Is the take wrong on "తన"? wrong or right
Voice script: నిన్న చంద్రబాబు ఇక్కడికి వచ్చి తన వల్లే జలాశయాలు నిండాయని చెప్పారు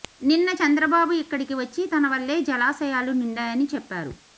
right